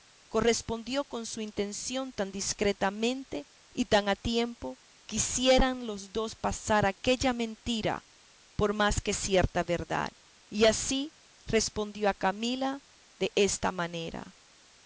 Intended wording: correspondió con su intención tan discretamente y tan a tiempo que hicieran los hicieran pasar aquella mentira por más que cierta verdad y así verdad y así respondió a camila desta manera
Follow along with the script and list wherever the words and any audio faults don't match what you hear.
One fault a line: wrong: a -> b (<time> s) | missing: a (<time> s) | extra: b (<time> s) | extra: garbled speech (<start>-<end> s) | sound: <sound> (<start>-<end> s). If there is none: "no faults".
wrong: hicieran -> dos (6.1 s)
missing: verdad y así (11.1 s)